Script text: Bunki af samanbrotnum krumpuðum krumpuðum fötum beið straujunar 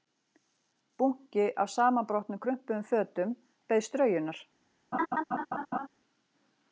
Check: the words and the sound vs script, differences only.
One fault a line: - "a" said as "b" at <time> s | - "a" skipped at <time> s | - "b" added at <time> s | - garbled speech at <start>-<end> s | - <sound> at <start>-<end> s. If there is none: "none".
- "krumpuðum" skipped at 2.9 s
- laugh at 4.9-5.9 s